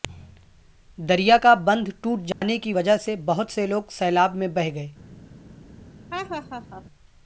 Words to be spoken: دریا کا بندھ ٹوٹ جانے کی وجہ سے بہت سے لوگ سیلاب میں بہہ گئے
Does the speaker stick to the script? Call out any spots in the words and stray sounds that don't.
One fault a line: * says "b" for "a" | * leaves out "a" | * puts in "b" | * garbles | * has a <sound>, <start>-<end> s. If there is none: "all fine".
* has a dropout, 2.3-2.4 s
* has a laugh, 6.1-6.8 s